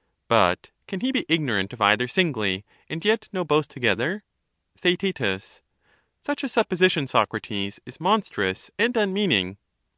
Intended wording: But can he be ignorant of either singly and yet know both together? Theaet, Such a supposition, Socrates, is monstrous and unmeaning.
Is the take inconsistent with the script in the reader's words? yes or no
no